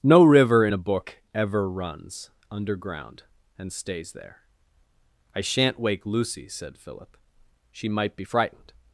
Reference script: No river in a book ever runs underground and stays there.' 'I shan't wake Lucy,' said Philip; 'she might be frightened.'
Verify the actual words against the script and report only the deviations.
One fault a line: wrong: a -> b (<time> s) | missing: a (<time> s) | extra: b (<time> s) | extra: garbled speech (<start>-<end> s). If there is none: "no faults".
no faults